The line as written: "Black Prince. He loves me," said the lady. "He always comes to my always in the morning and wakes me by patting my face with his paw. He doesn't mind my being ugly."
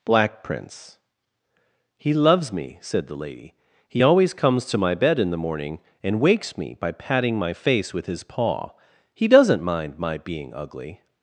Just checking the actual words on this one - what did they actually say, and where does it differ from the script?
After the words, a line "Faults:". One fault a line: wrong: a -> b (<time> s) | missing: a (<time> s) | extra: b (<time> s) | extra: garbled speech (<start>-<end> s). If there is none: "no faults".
"Black Prince. He loves me," said the lady. "He always comes to my bed in the morning and wakes me by patting my face with his paw. He doesn't mind my being ugly."
Faults:
wrong: always -> bed (4.9 s)